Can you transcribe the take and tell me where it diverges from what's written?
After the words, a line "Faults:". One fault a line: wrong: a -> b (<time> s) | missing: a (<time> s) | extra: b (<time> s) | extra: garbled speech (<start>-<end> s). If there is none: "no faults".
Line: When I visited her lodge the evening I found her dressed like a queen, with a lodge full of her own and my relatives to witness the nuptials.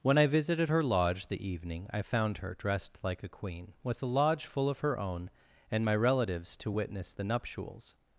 When I visited her lodge the evening I found her dressed like a queen, with a lodge full of her own and my relatives to witness the nuptials.
Faults:
no faults